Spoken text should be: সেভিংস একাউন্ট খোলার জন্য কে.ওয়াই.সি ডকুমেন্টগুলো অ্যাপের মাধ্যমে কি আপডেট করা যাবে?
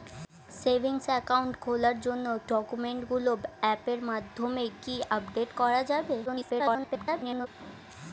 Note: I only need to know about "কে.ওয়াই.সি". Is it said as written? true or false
false